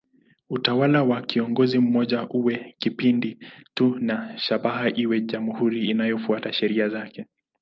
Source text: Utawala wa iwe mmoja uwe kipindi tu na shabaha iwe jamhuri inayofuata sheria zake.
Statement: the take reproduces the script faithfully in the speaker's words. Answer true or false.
false